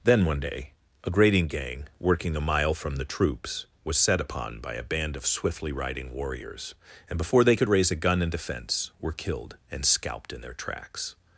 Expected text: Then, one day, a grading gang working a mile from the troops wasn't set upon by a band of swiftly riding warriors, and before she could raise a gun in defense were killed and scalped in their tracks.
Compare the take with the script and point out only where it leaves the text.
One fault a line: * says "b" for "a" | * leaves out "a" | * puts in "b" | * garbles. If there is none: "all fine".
* says "was" for "wasn't"
* says "they" for "she"